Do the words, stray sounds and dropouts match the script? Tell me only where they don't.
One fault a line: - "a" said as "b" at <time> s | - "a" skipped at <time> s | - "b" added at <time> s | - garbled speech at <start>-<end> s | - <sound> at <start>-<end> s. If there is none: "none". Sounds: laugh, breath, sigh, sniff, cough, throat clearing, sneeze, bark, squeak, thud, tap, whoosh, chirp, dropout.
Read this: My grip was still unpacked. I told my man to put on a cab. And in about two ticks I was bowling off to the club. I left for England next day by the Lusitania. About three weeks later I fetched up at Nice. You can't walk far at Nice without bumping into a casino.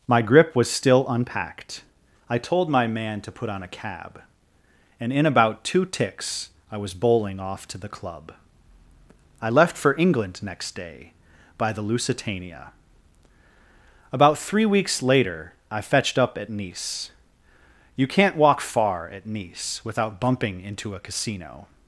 none